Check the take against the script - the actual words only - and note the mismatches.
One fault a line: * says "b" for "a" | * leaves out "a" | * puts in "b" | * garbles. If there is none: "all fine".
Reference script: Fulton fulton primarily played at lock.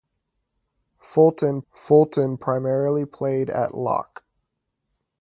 all fine